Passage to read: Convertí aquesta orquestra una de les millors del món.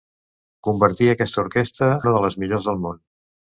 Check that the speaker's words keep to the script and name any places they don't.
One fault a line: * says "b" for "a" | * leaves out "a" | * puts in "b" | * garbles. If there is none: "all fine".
all fine